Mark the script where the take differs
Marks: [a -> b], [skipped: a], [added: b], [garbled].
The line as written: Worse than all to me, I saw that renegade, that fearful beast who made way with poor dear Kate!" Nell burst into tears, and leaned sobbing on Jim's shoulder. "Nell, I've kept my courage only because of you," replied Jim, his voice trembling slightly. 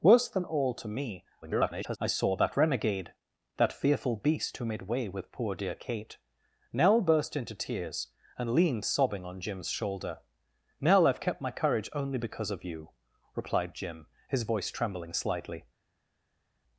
Worse than all to me, [garbled] I saw that renegade, that fearful beast who made way with poor dear Kate!" Nell burst into tears, and leaned sobbing on Jim's shoulder. "Nell, I've kept my courage only because of you," replied Jim, his voice trembling slightly.